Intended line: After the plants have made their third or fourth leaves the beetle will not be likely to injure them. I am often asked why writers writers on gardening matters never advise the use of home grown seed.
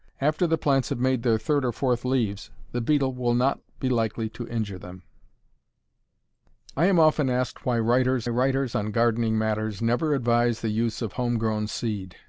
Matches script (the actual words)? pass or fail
pass